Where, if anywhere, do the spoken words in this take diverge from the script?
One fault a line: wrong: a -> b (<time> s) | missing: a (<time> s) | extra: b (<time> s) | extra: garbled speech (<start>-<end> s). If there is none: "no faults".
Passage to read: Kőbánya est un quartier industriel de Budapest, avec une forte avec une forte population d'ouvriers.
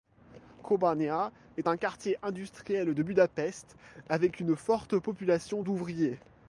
missing: avec une forte (5.0 s)